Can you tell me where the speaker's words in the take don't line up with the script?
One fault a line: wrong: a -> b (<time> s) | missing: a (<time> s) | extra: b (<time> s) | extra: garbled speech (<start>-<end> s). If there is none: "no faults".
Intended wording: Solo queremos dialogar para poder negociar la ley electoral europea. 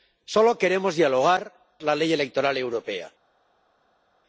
missing: para poder negociar (1.5 s)